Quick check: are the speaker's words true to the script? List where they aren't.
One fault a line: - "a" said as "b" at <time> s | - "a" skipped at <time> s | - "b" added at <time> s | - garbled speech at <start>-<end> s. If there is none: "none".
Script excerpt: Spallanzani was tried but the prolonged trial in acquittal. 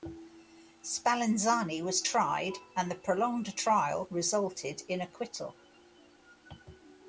- "but" said as "and" at 2.8 s
- "resulted" added at 4.1 s